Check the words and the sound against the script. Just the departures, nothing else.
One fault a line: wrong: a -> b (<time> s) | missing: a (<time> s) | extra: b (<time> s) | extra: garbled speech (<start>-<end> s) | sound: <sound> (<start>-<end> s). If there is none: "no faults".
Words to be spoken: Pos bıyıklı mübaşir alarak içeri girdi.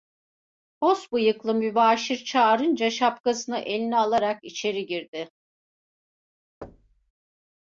extra: çağırınca şapkasını eline (2.2 s)
sound: thud (6.6-7.1 s)